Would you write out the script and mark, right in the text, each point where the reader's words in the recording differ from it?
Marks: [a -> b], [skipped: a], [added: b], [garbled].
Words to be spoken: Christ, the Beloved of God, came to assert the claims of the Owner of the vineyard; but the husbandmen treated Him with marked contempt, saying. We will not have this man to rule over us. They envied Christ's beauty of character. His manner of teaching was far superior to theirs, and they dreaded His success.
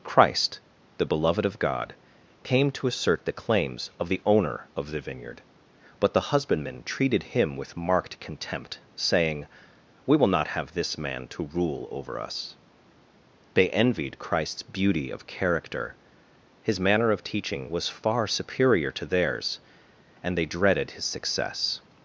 Christ, the Beloved of God, came to assert the claims of the Owner of the vineyard; but the husbandmen treated Him with marked contempt, saying. We will not have this man to rule over us. They envied Christ's beauty of character. His manner of teaching was far superior to theirs, and they dreaded His success.